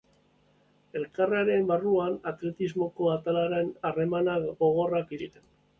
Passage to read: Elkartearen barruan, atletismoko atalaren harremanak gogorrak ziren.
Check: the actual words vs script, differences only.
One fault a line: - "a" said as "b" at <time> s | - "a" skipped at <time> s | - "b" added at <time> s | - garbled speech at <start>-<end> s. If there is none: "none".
none